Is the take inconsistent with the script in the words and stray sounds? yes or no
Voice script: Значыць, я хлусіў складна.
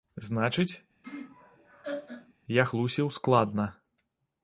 yes